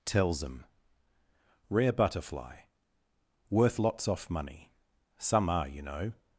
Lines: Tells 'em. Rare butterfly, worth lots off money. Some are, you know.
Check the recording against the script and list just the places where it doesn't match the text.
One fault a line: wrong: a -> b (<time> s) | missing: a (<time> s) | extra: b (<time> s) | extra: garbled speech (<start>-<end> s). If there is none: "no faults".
no faults